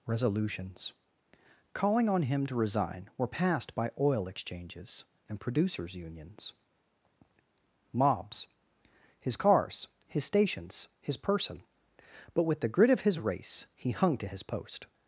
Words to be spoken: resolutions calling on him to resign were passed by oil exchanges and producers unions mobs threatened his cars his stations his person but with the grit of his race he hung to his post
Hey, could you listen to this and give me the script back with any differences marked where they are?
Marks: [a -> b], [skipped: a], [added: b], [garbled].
resolutions calling on him to resign were passed by oil exchanges and producers unions mobs [skipped: threatened] his cars his stations his person but with the grit of his race he hung to his post